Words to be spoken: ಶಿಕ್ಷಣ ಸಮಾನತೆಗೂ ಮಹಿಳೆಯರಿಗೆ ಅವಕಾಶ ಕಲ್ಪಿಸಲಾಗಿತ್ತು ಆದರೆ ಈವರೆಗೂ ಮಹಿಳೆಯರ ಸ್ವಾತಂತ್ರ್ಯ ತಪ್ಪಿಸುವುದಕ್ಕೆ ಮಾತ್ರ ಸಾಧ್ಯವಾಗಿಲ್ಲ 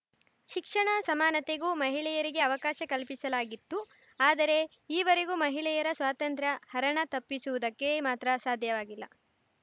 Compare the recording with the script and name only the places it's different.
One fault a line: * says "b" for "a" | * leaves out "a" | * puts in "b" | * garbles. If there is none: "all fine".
* puts in "ಹರಣ"